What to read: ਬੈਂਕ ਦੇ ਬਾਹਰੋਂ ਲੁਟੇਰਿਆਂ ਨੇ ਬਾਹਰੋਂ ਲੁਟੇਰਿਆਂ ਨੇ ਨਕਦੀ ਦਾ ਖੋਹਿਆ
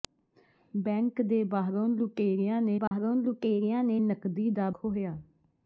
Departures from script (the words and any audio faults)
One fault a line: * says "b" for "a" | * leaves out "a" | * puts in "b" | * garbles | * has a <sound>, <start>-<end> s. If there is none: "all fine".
* has a dropout, 2.9-2.9 s